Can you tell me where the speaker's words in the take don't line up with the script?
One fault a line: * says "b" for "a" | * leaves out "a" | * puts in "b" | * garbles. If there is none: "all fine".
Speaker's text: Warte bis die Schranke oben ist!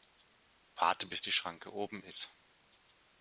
all fine